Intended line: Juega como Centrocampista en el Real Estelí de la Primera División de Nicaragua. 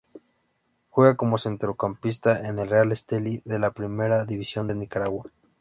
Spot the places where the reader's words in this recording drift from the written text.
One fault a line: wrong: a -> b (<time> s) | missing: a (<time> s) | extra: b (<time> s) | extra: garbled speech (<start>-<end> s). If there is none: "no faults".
no faults